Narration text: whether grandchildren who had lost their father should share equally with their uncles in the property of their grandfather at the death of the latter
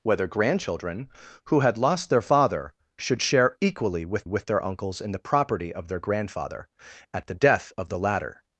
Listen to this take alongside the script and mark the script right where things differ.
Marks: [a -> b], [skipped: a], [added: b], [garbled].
whether grandchildren who had lost their father should share equally with [added: with] their uncles in the property of their grandfather at the death of the latter